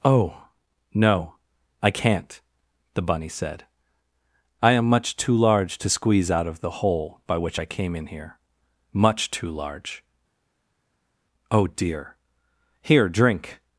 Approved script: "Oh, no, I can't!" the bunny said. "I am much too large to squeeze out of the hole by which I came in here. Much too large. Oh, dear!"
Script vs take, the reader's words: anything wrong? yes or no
yes